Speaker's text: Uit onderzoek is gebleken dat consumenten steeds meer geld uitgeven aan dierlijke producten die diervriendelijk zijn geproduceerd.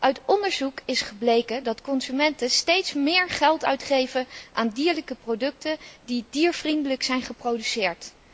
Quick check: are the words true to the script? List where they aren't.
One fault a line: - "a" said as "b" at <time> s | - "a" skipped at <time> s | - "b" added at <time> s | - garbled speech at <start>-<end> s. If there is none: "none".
none